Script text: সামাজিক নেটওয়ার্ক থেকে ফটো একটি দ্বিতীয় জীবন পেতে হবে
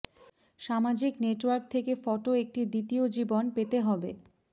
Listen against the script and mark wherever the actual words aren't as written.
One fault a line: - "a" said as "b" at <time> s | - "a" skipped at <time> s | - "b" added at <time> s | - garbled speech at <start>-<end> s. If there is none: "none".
none